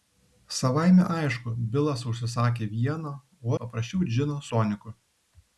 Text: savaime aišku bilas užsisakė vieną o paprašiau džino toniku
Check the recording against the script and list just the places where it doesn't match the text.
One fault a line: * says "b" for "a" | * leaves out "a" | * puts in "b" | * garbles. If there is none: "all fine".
all fine